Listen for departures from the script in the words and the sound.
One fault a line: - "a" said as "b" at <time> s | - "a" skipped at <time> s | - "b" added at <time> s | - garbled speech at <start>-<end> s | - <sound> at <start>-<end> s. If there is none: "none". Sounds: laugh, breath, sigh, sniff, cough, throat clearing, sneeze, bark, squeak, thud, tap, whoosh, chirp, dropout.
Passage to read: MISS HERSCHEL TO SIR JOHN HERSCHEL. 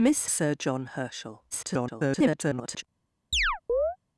- "HERSCHEL TO" skipped at 0.3 s
- garbled speech at 1.5-2.8 s
- chirp at 3.3-4.0 s